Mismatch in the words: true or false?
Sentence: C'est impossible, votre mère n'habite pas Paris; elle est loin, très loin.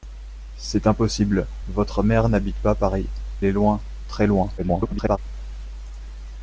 true